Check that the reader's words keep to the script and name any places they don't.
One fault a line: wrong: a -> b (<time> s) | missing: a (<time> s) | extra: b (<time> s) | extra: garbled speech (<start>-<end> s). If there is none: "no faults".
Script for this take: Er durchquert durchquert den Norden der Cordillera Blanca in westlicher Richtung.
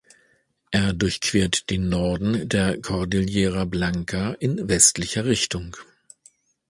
missing: durchquert (1.7 s)